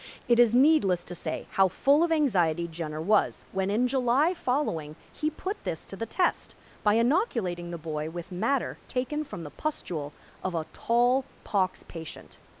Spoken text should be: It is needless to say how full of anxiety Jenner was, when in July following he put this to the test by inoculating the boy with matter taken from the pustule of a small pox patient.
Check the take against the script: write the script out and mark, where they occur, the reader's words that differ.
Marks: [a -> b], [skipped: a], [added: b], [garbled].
It is needless to say how full of anxiety Jenner was, when in July following he put this to the test by inoculating the boy with matter taken from the pustule of a [small -> tall] pox patient.